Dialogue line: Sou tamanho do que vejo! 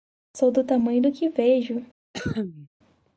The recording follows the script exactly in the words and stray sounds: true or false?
false